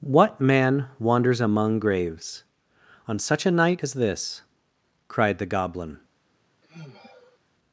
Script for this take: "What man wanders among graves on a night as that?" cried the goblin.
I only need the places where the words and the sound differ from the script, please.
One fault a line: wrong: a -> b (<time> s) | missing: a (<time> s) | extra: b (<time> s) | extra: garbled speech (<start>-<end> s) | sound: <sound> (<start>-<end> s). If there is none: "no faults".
extra: such (3.2 s)
wrong: that -> this (3.9 s)
sound: sigh (6.6-7.4 s)